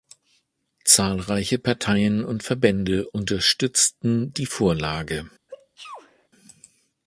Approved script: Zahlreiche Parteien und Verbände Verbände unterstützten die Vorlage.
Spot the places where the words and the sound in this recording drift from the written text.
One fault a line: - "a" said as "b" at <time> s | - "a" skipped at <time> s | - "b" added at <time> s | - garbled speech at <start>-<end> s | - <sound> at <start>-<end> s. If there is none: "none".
- "Verbände" skipped at 3.1 s
- sneeze at 5.5-6.3 s